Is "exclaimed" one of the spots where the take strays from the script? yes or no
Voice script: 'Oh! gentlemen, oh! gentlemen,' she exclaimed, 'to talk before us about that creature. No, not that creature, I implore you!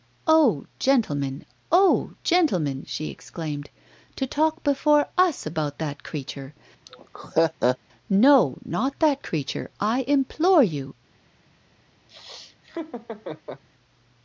no